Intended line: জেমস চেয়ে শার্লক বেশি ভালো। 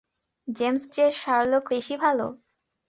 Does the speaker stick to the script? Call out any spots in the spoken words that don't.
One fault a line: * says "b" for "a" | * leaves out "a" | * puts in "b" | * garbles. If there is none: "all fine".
all fine